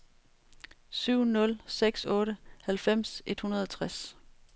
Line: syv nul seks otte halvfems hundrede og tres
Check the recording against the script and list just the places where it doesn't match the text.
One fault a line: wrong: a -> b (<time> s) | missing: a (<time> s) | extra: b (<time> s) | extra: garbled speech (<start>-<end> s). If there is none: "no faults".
extra: et (3.3 s)